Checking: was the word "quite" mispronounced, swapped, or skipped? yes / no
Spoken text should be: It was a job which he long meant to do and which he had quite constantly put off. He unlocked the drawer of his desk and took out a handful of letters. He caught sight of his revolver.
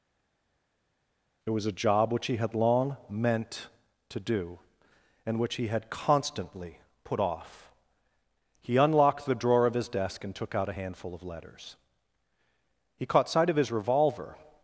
yes